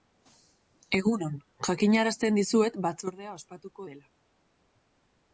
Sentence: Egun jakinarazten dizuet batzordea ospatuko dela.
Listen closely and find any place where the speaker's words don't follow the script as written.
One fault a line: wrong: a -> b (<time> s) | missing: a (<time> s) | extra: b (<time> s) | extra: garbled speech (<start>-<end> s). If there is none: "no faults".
extra: on (1.2 s)